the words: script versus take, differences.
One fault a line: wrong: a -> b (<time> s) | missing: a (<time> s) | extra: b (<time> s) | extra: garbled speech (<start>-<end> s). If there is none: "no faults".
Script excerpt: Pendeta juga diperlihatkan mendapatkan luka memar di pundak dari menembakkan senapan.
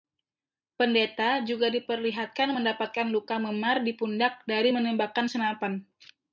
no faults